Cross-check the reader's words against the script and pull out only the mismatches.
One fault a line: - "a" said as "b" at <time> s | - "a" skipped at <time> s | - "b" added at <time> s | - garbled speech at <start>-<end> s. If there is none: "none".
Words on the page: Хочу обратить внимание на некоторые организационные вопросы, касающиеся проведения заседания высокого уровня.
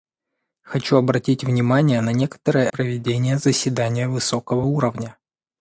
- "организационные вопросы касающиеся" skipped at 2.7 s